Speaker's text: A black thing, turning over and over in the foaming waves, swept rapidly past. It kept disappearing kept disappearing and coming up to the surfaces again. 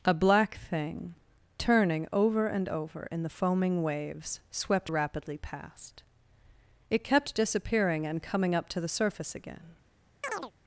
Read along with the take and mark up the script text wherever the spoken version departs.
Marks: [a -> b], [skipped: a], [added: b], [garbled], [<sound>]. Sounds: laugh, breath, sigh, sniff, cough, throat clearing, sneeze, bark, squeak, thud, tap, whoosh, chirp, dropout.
A black thing, turning over and over in the foaming waves, swept rapidly past. It kept disappearing [skipped: kept disappearing] and coming up to the [surfaces -> surface] again. [chirp]